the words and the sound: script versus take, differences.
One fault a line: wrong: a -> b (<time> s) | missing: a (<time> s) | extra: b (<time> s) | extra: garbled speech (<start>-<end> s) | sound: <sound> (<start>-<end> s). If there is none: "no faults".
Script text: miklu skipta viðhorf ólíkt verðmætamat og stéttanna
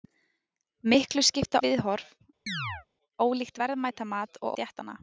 sound: chirp (2.5-2.9 s)